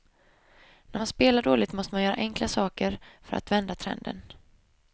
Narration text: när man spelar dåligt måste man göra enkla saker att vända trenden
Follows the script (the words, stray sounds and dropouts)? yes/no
no